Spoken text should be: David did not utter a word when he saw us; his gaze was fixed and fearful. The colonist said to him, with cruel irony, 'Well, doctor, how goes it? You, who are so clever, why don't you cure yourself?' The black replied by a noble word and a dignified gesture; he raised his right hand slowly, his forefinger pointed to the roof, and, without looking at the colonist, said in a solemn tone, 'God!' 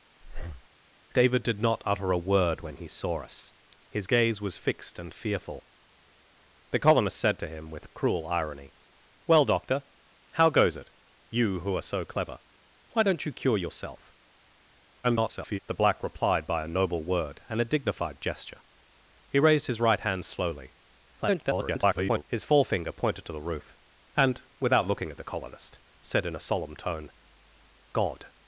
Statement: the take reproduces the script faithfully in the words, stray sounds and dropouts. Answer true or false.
false